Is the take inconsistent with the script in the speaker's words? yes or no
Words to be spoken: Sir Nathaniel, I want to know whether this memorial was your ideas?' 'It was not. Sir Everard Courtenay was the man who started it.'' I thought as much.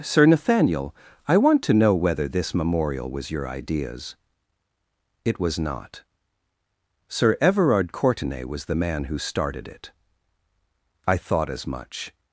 no